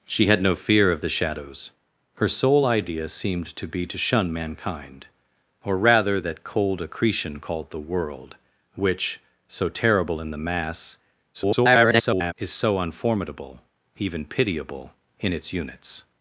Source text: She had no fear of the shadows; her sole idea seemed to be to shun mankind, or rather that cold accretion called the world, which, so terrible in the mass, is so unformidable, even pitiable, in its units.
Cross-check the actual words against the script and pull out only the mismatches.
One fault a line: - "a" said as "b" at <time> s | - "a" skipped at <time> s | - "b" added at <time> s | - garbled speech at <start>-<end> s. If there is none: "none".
- garbled speech at 11.3-12.3 s